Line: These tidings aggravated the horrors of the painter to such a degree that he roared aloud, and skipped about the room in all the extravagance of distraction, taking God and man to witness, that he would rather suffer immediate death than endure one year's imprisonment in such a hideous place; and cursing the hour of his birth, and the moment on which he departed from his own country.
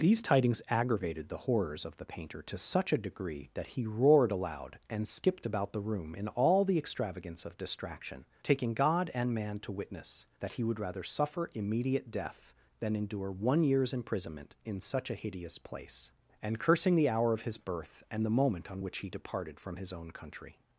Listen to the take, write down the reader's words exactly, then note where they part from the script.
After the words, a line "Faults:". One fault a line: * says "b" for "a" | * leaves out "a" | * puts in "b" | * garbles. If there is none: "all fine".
These tidings aggravated the horrors of the painter to such a degree that he roared aloud, and skipped about the room in all the extravagance of distraction, taking God and man to witness, that he would rather suffer immediate death than endure one year's imprisonment in such a hideous place; and cursing the hour of his birth, and the moment on which he departed from his own country.
Faults:
all fine